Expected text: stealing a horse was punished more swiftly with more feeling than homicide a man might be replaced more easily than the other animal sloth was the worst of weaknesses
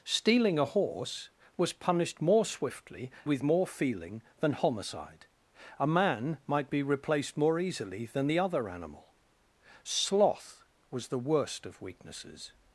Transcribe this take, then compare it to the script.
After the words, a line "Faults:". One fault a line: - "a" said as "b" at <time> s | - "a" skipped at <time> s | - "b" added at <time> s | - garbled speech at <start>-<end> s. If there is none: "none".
stealing a horse was punished more swiftly with more feeling than homicide a man might be replaced more easily than the other animal sloth was the worst of weaknesses
Faults:
none